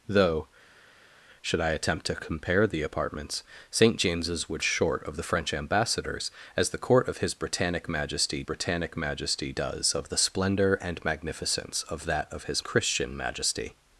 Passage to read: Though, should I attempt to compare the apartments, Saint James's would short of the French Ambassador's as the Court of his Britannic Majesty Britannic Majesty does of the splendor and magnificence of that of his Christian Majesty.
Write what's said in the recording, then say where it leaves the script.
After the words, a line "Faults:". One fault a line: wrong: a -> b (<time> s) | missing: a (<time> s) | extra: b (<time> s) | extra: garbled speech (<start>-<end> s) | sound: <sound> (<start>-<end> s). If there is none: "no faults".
Though, should I attempt to compare the apartments, Saint James's would short of the French Ambassador's as the Court of his Britannic Majesty Britannic Majesty does of the splendor and magnificence of that of his Christian Majesty.
Faults:
no faults